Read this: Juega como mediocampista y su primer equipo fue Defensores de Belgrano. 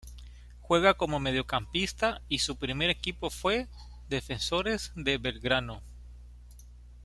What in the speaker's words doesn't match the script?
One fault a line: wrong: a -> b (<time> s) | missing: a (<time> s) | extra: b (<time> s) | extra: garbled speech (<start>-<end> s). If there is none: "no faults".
no faults